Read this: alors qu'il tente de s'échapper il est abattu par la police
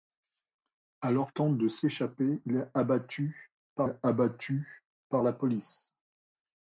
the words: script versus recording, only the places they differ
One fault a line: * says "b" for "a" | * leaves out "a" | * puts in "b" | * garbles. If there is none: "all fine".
* leaves out "qu'il"
* puts in "est abattu par"